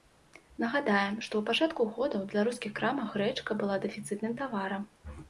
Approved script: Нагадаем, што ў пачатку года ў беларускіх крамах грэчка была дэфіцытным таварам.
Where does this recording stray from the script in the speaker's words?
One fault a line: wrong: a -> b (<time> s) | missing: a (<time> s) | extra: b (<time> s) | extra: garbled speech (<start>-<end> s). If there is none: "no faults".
no faults